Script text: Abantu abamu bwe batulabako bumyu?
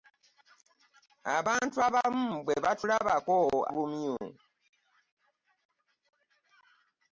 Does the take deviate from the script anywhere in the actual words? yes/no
no